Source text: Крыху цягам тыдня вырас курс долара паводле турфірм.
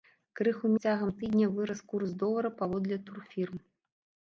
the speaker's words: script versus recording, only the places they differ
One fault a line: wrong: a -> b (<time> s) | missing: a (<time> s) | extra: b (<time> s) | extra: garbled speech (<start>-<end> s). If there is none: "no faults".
no faults